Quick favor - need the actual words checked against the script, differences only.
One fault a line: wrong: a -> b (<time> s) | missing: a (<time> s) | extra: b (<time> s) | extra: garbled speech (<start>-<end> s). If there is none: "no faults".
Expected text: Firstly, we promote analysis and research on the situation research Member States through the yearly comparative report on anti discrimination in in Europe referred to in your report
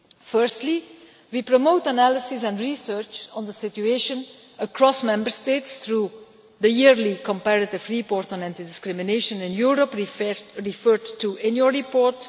wrong: research -> across (4.6 s)
missing: in (9.5 s)